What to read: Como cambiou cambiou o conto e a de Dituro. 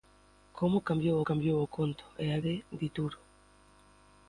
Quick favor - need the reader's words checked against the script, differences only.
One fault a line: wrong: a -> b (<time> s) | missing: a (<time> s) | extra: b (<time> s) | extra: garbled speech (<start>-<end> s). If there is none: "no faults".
no faults